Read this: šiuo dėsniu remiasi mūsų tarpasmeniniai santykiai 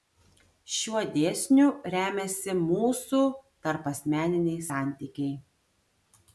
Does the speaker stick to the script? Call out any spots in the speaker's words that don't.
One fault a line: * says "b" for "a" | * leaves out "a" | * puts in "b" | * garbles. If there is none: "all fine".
all fine